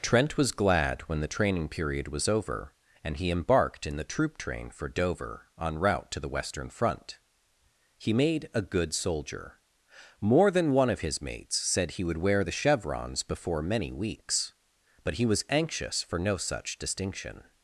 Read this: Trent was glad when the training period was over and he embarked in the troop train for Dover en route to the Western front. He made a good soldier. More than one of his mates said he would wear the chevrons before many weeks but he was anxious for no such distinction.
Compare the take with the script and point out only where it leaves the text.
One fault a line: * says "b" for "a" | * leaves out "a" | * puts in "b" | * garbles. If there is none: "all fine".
all fine